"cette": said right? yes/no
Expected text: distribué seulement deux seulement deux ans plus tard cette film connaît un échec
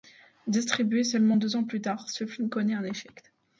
no